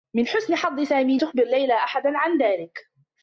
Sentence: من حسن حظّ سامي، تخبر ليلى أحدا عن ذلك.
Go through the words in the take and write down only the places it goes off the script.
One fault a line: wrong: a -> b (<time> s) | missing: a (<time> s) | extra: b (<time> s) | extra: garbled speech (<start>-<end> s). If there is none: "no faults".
no faults